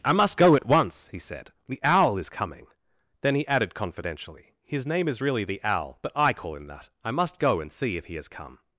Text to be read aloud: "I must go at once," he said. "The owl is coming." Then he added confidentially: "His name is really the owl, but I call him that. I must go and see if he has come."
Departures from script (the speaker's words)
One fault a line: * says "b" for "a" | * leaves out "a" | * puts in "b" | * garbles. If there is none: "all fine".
all fine